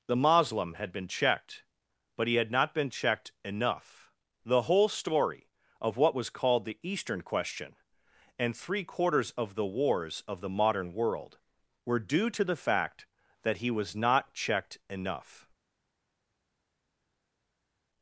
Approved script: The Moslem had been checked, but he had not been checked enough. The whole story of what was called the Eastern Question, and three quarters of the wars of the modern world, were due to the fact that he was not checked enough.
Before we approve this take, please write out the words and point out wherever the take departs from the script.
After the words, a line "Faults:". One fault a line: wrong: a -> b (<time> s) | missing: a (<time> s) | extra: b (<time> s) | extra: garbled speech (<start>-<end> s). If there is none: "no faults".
The Moslem had been checked, but he had not been checked enough. The whole story of what was called the Eastern Question, and three quarters of the wars of the modern world, were due to the fact that he was not checked enough.
Faults:
no faults